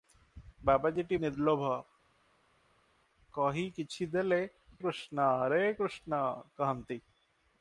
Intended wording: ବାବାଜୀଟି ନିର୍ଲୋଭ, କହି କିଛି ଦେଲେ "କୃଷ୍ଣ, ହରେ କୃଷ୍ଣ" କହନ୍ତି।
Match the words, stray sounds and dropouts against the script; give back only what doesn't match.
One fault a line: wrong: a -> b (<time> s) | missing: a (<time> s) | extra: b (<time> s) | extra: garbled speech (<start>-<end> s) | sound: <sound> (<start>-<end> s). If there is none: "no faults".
no faults